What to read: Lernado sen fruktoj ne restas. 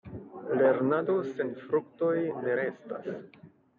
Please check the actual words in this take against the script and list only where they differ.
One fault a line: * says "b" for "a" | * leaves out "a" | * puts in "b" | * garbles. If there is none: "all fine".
all fine